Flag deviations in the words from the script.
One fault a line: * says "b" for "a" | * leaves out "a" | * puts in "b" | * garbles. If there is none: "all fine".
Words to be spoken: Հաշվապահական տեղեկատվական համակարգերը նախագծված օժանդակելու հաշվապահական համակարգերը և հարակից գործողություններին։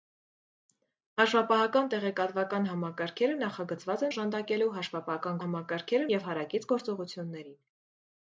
all fine